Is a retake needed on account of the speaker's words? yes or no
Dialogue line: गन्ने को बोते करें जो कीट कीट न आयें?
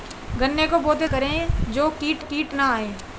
no